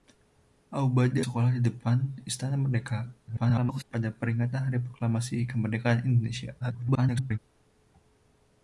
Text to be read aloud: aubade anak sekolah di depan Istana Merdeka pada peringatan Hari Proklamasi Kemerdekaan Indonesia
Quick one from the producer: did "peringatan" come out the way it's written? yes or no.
yes